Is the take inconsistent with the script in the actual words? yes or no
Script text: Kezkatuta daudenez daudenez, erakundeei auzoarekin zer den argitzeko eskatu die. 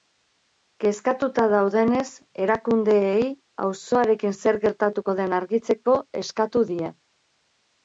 yes